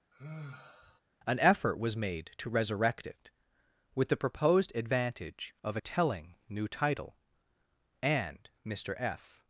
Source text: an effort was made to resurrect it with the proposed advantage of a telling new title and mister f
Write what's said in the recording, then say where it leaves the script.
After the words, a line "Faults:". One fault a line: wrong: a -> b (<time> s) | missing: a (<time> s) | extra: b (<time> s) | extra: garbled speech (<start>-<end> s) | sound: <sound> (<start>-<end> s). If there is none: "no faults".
an effort was made to resurrect it with the proposed advantage of a telling new title and mister f
Faults:
sound: sigh (0.1-1.0 s)